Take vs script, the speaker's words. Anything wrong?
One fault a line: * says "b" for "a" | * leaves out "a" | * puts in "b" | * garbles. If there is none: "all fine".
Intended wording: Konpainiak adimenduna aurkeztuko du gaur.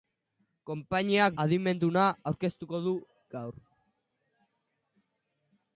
all fine